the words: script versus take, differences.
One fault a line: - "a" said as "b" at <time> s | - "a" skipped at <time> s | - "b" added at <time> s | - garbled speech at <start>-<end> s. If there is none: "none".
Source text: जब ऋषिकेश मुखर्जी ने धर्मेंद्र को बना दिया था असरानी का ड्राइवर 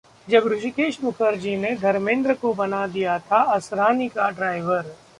none